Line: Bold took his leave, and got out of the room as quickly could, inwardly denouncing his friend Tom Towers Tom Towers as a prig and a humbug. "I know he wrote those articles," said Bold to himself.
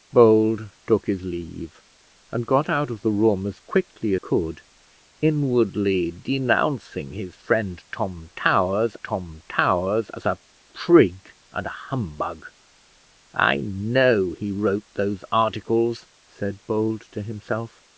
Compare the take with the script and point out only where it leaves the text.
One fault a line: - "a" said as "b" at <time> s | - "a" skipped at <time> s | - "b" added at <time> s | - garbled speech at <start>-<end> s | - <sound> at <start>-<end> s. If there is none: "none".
none